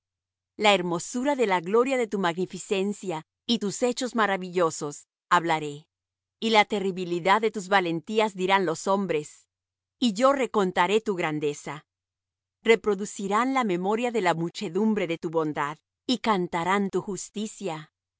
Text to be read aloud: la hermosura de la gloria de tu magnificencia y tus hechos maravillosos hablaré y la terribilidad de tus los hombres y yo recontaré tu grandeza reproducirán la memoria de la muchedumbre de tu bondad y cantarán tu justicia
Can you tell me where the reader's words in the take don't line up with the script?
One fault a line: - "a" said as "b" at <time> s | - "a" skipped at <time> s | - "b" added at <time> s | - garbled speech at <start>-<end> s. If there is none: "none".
- "valentías dirán" added at 7.7 s